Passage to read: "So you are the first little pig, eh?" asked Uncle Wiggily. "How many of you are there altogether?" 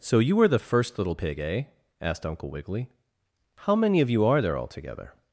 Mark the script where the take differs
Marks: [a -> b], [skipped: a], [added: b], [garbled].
"So you [are -> were] the first little pig, eh?" asked Uncle Wiggily. "How many of you are there altogether?"